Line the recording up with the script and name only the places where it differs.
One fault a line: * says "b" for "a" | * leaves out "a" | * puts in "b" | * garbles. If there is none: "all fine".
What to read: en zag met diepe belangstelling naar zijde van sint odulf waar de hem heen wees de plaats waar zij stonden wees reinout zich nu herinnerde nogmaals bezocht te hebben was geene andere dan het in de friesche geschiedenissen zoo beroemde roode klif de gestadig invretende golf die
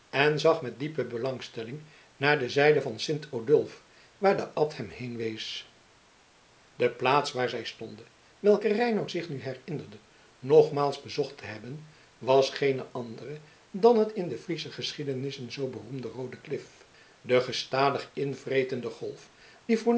* puts in "de"
* puts in "abt"
* says "welke" for "wees"